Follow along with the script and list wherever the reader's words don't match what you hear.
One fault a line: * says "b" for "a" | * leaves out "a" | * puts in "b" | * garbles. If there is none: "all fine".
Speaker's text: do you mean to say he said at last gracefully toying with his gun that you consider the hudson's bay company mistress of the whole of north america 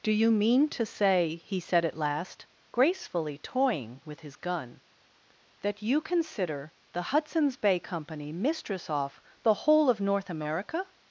* says "off" for "of"